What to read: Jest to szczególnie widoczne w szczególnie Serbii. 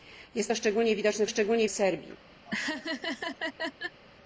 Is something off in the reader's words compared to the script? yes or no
no